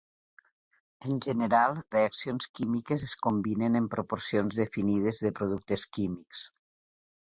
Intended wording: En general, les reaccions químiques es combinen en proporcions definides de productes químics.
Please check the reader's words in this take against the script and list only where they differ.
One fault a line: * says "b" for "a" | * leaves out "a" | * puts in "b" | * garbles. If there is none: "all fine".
* leaves out "les"